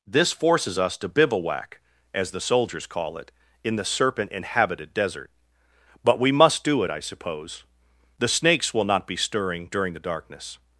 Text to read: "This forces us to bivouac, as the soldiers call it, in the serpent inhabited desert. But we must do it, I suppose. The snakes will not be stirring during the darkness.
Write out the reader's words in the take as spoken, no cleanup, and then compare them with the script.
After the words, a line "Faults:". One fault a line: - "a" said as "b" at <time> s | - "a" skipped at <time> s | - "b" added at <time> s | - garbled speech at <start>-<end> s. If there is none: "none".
"This forces us to bivouac, as the soldiers call it, in the serpent inhabited desert. But we must do it, I suppose. The snakes will not be stirring during the darkness.
Faults:
none